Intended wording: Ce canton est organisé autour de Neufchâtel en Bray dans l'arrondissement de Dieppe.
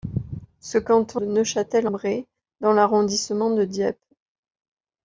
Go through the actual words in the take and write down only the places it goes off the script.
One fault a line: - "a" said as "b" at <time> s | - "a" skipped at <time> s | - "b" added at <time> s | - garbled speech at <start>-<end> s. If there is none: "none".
- "est organisé autour" skipped at 1.2 s
- "en" skipped at 1.9 s